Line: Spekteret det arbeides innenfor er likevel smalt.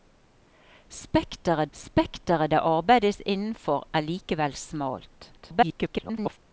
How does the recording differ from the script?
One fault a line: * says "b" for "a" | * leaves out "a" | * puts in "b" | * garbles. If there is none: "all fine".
* puts in "spekteret"
* garbles